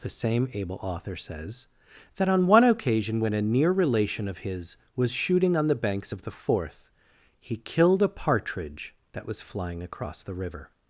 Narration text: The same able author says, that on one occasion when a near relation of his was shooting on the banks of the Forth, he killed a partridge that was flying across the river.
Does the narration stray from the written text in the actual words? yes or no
no